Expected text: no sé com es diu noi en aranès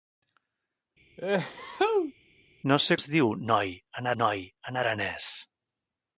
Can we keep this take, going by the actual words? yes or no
no